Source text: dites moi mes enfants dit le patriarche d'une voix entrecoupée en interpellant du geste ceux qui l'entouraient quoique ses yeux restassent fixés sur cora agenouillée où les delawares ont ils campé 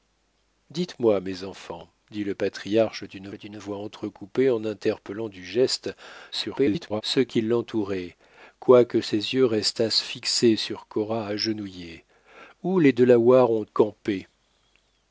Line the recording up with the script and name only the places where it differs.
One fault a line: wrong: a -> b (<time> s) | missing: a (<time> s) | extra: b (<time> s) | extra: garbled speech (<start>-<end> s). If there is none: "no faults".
extra: d'une (3.3 s)
extra: garbled speech (6.3-7.0 s)
missing: ils (13.6 s)